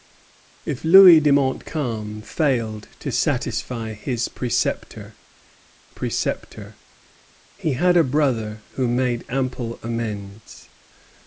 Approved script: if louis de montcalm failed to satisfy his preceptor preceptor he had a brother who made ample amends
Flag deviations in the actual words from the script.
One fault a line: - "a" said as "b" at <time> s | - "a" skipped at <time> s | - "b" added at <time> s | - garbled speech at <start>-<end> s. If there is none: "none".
none